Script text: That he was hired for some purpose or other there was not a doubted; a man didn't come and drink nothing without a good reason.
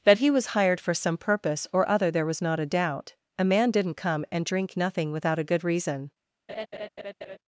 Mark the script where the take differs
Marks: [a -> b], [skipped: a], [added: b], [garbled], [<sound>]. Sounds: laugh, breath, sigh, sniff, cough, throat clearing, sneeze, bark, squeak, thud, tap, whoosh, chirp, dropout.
That he was hired for some purpose or other there was not a [doubted; -> doubt] a man didn't come and drink nothing without a good reason. [laugh]